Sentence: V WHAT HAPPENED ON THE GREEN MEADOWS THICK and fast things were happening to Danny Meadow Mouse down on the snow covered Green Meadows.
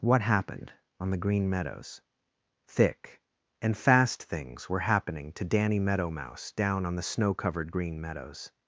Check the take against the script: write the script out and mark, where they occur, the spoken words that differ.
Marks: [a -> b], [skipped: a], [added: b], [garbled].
[skipped: V] WHAT HAPPENED ON THE GREEN MEADOWS THICK and fast things were happening to Danny Meadow Mouse down on the snow covered Green Meadows.